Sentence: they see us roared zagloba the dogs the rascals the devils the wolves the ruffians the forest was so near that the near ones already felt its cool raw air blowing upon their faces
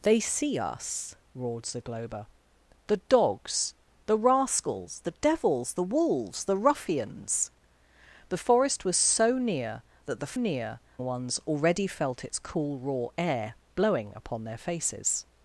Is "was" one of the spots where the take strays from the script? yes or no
no